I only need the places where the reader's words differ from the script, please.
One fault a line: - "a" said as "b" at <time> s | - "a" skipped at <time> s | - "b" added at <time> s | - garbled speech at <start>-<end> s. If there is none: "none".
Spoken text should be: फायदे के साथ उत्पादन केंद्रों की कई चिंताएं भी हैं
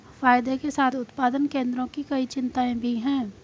none